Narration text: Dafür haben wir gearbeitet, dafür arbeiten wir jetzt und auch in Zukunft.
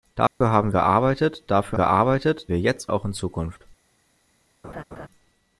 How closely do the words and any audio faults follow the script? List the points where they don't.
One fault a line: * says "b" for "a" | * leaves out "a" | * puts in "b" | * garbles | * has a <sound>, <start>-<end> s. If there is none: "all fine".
* has a dropout, 0.3-0.4 s
* leaves out "wir"
* says "gearbeitet" for "arbeiten"
* leaves out "und"
* has a laugh, 4.6-5.1 s